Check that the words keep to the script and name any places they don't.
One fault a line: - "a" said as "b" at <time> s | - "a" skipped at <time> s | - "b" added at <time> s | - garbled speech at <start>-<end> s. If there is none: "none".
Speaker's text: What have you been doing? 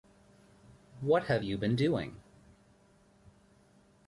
none